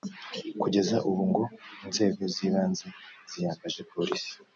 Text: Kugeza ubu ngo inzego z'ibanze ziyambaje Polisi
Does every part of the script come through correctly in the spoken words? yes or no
yes